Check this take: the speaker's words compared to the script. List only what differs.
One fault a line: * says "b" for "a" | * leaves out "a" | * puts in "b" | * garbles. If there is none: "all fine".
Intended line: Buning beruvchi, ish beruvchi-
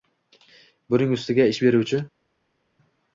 * says "ustiga" for "beruvchi"